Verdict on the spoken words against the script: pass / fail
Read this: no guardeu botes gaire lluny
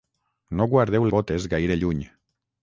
pass